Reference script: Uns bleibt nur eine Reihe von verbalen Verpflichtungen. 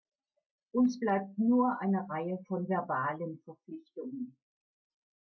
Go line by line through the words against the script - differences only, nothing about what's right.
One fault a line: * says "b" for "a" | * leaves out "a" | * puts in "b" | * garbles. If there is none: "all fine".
all fine